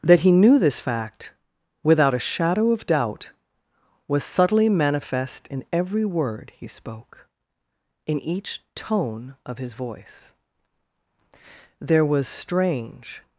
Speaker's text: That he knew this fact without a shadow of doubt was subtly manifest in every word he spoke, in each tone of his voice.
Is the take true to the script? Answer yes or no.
no